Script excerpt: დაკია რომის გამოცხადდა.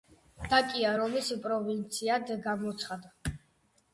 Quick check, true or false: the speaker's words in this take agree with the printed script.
false